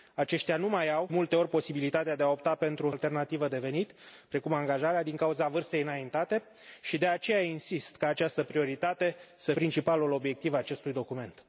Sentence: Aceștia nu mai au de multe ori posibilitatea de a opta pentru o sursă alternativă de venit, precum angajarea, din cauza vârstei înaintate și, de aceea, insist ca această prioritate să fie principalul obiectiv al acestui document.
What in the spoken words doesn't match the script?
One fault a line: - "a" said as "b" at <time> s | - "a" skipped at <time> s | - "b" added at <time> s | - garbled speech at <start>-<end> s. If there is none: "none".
- "de" skipped at 1.1 s
- "sursă" skipped at 2.9 s
- "fie" skipped at 9.5 s